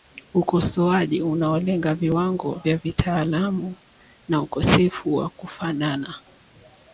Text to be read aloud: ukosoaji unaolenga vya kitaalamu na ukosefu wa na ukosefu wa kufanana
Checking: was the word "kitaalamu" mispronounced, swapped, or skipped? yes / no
no